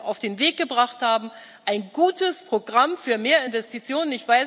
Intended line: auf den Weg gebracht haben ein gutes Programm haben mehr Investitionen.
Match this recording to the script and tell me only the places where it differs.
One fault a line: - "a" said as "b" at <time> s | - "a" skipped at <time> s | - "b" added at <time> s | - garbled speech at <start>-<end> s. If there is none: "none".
- "haben" said as "für" at 3.0 s